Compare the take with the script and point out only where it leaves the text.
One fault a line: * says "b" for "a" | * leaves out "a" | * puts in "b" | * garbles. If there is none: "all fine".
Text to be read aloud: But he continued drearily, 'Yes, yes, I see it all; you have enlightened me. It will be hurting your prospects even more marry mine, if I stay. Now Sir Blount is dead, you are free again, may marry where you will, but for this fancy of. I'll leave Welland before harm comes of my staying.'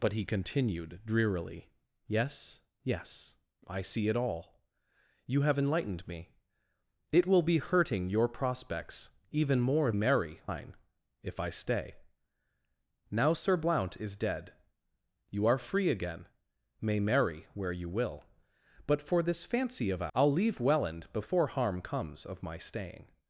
all fine